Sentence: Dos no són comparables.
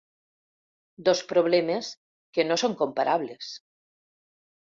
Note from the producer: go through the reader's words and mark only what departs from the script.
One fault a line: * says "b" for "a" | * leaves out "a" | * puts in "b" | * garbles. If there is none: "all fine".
* puts in "problemes que"